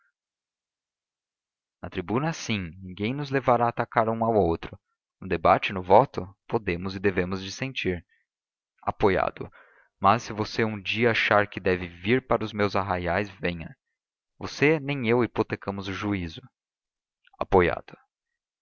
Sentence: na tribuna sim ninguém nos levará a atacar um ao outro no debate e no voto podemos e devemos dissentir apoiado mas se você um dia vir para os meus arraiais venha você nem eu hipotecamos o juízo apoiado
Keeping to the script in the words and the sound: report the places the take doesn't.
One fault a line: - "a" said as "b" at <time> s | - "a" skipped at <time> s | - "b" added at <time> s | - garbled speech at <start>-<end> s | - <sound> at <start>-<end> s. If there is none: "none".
- "achar que deve" added at 11.1 s